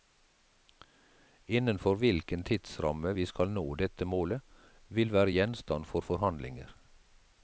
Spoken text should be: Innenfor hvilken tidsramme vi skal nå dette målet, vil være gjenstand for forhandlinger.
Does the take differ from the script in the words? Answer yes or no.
no